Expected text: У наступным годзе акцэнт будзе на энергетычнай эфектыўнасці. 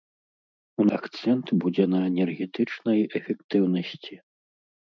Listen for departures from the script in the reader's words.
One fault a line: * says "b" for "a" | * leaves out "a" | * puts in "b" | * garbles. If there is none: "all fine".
* leaves out "наступным годзе"